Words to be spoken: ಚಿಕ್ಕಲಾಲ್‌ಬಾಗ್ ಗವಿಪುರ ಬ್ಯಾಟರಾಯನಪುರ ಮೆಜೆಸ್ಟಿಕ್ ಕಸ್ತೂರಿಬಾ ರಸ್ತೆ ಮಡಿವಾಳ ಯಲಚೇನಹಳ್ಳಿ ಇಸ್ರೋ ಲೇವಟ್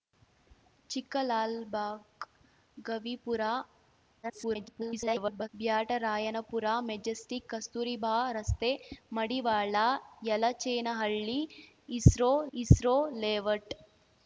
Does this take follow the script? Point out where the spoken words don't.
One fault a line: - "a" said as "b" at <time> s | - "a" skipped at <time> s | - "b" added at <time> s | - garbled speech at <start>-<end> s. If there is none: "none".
- garbled speech at 4.2-5.5 s
- "ಇಸ್ರೋ" added at 12.5 s